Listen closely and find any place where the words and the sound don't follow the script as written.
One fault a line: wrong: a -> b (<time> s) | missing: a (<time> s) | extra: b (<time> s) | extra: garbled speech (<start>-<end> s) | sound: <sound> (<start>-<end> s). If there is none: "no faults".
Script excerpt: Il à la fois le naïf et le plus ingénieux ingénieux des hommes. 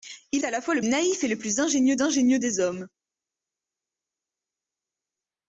no faults